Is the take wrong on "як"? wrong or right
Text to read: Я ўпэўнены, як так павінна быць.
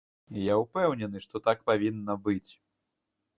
wrong